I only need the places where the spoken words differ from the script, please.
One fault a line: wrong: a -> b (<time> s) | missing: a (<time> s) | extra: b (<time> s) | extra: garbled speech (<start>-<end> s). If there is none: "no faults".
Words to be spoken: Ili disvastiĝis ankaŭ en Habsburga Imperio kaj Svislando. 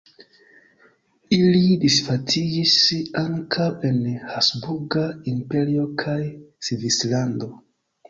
no faults